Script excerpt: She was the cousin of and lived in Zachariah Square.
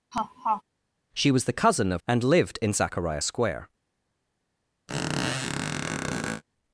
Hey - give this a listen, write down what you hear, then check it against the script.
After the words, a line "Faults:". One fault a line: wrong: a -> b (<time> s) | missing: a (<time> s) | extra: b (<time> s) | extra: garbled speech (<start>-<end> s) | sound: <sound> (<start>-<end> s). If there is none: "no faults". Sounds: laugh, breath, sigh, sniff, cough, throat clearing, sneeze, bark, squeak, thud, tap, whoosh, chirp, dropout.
She was the cousin of and lived in Zachariah Square.
Faults:
sound: laugh (0.1-0.6 s)
sound: squeak (4.9-6.4 s)